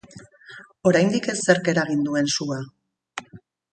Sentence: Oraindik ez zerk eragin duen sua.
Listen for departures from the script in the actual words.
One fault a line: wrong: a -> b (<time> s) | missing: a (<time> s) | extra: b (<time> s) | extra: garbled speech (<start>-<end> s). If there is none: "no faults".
no faults